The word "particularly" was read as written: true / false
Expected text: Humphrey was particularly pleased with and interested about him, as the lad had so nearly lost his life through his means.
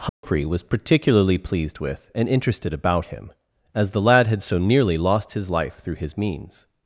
true